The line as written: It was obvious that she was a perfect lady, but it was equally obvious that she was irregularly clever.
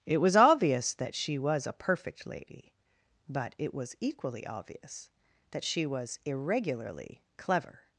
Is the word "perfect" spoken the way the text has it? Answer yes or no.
yes